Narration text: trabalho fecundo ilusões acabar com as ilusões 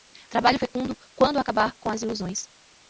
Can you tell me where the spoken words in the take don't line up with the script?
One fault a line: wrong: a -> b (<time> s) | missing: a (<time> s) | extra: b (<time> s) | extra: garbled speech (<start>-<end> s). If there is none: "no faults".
wrong: ilusões -> quando (1.1 s)